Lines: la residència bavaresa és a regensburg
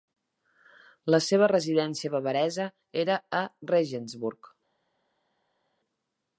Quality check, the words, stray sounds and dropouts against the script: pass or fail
fail